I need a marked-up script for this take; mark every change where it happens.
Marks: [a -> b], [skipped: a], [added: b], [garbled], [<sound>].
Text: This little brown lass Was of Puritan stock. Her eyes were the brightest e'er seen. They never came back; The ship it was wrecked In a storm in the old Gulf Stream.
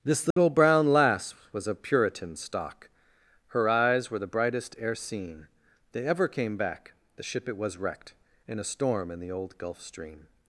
This little [dropout] brown lass Was of Puritan stock. Her eyes were the brightest e'er seen. They [never -> ever] came back; The ship it was wrecked In a storm in the old Gulf Stream.